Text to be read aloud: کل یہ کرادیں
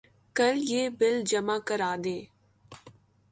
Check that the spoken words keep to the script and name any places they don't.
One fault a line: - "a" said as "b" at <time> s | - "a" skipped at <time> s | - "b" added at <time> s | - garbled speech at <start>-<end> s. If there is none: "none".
- "بل جمع" added at 1.0 s